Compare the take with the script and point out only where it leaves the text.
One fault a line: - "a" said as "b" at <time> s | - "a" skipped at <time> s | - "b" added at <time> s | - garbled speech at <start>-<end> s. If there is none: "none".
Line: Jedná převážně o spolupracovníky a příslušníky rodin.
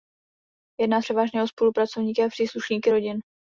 none